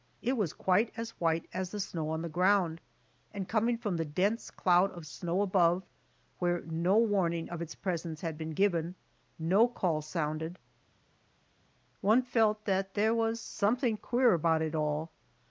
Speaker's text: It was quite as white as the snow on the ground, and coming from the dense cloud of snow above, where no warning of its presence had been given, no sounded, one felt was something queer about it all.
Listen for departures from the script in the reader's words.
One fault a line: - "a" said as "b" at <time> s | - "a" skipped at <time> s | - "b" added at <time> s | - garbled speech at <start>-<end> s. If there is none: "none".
- "call" added at 9.7 s
- "that there" added at 12.7 s